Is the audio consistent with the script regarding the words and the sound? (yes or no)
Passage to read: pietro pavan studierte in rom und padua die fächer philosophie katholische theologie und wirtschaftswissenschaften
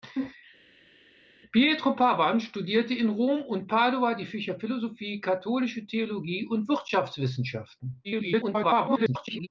no